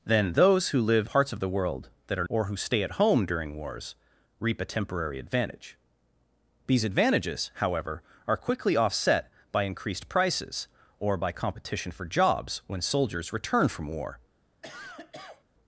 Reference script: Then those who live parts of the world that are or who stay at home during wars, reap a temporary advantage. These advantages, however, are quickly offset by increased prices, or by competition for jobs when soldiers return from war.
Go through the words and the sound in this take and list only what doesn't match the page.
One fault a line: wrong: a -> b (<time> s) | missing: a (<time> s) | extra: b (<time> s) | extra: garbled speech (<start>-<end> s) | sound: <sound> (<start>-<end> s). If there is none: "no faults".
sound: cough (14.6-15.4 s)